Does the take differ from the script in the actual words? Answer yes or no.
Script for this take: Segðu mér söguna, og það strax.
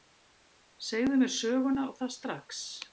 no